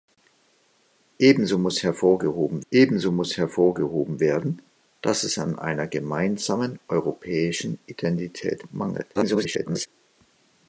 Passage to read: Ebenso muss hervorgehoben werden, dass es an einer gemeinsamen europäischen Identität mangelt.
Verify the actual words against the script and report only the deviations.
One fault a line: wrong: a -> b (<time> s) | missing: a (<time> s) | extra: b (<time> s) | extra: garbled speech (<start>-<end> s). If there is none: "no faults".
extra: ebenso muss hervorgehoben (2.7 s)
extra: garbled speech (9.1-9.9 s)